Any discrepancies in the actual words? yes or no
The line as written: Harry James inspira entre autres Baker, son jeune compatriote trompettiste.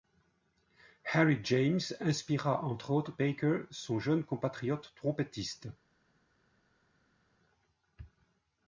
no